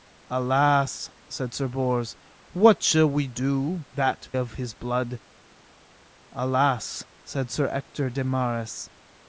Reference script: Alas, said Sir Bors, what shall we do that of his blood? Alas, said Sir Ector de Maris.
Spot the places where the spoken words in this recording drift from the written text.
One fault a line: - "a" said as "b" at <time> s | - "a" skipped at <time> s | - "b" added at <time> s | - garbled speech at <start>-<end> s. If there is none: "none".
none